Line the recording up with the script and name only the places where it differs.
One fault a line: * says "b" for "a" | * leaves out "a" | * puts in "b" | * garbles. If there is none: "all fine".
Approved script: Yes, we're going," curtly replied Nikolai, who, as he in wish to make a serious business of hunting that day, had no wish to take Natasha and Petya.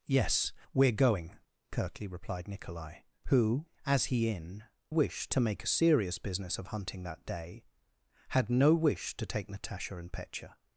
all fine